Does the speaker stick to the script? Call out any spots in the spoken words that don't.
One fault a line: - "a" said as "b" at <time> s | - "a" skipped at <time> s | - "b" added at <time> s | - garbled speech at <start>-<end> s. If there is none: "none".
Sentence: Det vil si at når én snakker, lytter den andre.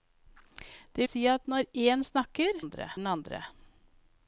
- "vil" skipped at 1.1 s
- "lytter" said as "andre" at 2.6 s